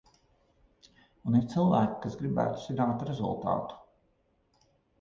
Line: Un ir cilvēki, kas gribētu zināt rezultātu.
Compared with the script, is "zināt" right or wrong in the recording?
right